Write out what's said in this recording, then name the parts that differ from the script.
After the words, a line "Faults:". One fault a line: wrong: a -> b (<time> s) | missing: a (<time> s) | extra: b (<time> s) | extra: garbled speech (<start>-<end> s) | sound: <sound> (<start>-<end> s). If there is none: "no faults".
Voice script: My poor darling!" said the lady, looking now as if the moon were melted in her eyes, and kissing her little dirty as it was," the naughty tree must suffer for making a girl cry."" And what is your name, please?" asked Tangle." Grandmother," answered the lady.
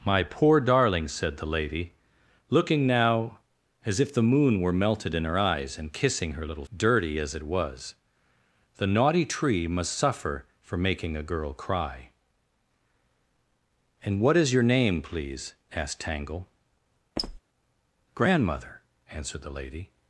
My poor darling!" said the lady, looking now as if the moon were melted in her eyes, and kissing her little dirty as it was," the naughty tree must suffer for making a girl cry."" And what is your name, please?" asked Tangle." Grandmother," answered the lady.
Faults:
sound: squeak (17.2-17.4 s)